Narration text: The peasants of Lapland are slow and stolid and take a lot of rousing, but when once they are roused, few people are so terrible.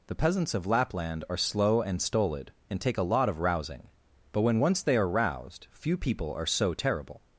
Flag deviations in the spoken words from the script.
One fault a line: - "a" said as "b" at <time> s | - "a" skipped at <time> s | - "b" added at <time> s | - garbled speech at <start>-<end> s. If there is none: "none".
none